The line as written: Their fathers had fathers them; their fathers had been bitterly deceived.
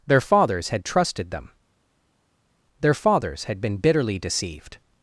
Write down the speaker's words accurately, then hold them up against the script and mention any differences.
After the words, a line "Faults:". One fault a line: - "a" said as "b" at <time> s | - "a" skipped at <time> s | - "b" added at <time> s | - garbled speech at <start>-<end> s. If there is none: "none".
Their fathers had trusted them; their fathers had been bitterly deceived.
Faults:
- "fathers" said as "trusted" at 0.8 s